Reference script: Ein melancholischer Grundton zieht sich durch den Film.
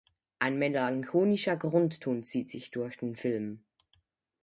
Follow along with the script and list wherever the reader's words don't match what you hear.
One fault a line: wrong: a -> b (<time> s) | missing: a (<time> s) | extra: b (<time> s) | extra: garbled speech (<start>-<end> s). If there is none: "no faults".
no faults